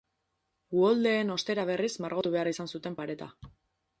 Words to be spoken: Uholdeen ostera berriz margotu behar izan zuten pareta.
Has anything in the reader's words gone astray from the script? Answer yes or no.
no